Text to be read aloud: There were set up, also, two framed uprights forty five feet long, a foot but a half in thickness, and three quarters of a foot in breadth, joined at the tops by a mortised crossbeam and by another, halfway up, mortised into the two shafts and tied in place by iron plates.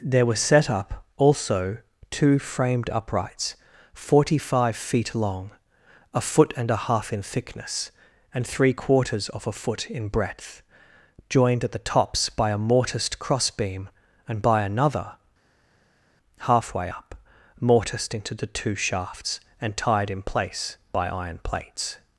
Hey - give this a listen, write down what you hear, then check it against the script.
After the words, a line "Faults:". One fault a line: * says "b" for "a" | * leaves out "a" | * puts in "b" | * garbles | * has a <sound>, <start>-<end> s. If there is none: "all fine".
There were set up, also, two framed uprights forty five feet long, a foot and a half in thickness, and three quarters of a foot in breadth, joined at the tops by a mortised crossbeam and by another, halfway up, mortised into the two shafts and tied in place by iron plates.
Faults:
* says "and" for "but"